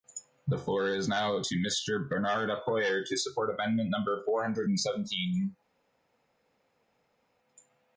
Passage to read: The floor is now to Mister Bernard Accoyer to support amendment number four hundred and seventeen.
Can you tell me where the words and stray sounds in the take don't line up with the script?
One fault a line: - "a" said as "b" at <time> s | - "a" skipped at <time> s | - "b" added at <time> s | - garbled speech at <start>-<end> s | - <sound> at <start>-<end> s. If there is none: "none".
none